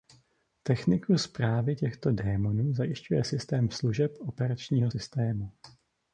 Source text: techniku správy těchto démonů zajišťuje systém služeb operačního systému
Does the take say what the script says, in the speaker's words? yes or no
yes